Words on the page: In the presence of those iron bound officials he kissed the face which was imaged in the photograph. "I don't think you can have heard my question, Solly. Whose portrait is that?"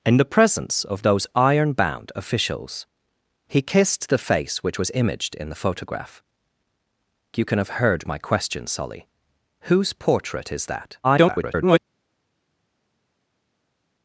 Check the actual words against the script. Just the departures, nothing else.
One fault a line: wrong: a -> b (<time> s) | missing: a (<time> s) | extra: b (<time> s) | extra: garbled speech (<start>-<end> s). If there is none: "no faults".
missing: I don't think (6.2 s)
extra: garbled speech (11.0-11.8 s)